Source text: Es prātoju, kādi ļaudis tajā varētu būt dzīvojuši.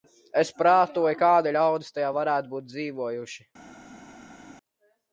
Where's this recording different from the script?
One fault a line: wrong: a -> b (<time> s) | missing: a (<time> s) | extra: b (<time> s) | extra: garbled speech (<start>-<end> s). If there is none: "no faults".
no faults